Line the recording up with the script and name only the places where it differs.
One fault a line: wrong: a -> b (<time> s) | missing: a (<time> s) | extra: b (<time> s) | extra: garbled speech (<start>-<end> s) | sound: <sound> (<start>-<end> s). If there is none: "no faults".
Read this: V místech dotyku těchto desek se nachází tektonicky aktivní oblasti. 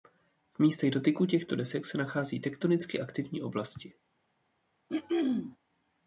sound: throat clearing (4.9-5.6 s)